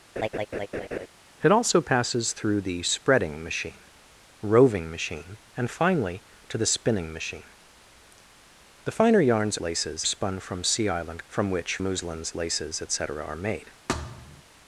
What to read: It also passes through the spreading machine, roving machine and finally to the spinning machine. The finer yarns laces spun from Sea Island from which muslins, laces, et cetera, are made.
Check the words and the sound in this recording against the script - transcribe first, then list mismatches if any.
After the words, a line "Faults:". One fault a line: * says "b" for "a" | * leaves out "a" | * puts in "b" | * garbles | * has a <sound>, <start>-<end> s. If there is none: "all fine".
It also passes through the spreading machine, roving machine and finally to the spinning machine. The finer yarns laces spun from Sea Island from which muslins, laces, et cetera, are made.
Faults:
* has a laugh, 0.2-1.1 s
* has a thud, 13.9-14.4 s